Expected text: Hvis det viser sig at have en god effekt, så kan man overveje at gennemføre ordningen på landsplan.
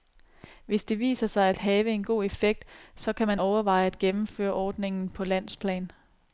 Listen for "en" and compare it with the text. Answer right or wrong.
right